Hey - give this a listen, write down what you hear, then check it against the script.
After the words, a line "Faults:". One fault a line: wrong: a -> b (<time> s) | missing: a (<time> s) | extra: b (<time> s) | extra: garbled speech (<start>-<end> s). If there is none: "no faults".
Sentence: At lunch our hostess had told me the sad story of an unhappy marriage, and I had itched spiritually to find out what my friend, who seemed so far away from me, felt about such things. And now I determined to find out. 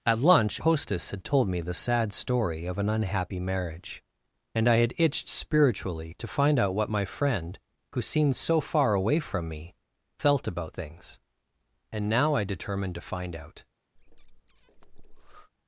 At lunch hostess had told me the sad story of an unhappy marriage, and I had itched spiritually to find out what my friend, who seemed so far away from me, felt about things. And now I determined to find out.
Faults:
missing: our (0.6 s)
missing: such (10.8 s)